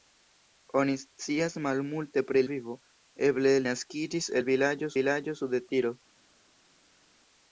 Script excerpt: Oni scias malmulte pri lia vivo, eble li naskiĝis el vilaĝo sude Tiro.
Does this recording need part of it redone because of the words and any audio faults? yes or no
yes